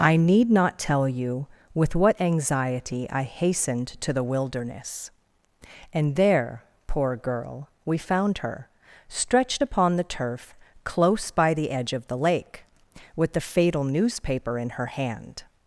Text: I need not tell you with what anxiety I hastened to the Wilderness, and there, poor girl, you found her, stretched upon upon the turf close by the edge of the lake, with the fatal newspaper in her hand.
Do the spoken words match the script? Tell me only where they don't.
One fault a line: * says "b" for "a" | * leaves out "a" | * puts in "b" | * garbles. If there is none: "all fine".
* says "we" for "you"
* leaves out "upon"